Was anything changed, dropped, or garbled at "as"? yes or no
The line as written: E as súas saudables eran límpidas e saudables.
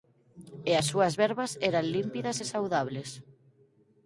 no